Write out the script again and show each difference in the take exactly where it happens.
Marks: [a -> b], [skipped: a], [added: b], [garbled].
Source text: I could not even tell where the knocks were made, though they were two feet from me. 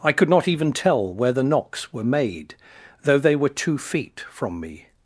I could not even tell where the knocks were made, though they were two feet from me.